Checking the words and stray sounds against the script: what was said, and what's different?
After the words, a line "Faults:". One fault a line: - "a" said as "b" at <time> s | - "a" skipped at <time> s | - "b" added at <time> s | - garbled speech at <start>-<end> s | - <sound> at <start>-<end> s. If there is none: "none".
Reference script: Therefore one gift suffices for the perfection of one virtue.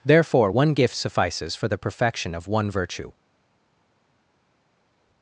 Therefore one gift suffices for the perfection of one virtue.
Faults:
none